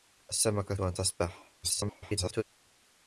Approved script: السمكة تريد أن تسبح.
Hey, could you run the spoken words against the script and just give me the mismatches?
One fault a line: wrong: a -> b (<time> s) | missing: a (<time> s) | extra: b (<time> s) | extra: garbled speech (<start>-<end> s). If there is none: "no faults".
missing: تريد (0.8 s)
extra: garbled speech (1.6-2.4 s)